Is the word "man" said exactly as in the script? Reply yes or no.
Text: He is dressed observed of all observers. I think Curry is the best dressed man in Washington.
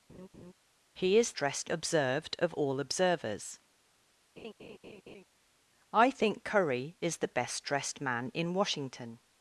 yes